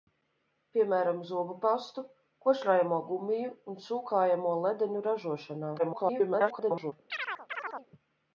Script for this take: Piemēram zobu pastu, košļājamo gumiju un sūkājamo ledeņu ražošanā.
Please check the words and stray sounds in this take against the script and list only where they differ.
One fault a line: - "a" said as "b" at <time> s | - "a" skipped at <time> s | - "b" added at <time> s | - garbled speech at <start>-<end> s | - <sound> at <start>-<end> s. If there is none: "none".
- garbled speech at 5.8-6.9 s
- chirp at 7.1-7.9 s